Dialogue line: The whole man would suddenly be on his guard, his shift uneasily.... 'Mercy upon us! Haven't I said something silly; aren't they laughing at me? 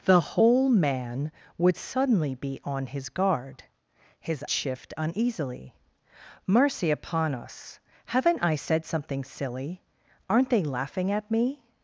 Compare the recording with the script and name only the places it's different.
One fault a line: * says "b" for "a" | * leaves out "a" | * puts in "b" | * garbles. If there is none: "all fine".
all fine